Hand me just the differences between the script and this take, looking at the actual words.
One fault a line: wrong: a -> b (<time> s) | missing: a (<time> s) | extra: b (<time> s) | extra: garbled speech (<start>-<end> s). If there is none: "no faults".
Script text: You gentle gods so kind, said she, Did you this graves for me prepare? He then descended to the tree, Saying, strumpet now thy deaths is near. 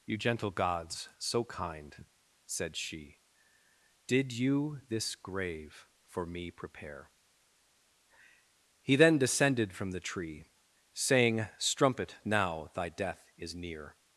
wrong: graves -> grave (5.1 s)
wrong: to -> from (9.7 s)
wrong: deaths -> death (12.9 s)